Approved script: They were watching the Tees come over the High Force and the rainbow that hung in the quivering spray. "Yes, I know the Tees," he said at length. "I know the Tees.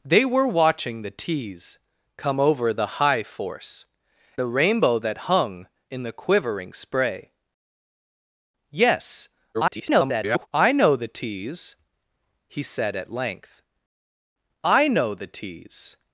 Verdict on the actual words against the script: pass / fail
fail